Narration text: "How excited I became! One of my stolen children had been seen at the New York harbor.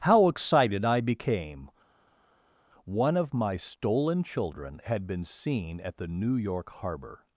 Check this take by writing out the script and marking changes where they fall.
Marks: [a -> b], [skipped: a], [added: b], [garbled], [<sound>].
"How excited I became! One of my stolen children had been seen at the New York harbor.